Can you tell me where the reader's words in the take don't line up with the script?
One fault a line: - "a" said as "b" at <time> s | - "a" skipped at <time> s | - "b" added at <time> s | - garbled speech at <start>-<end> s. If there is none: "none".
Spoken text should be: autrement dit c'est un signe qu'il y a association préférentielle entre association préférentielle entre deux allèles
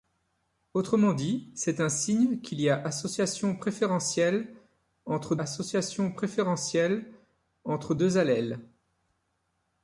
none